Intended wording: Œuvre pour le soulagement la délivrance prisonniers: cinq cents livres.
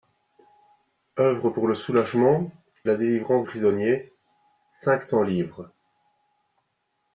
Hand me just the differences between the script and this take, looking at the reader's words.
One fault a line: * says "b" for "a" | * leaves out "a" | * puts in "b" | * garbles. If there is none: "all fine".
all fine